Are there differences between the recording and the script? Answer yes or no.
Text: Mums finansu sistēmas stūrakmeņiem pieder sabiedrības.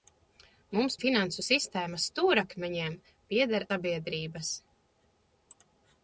no